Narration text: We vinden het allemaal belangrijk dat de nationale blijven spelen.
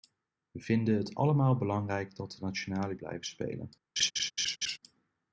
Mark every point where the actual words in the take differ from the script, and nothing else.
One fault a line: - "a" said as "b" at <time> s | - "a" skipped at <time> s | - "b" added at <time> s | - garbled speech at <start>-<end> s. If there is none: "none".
none